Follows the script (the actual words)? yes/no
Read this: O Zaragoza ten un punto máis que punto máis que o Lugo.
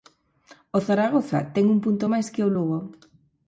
no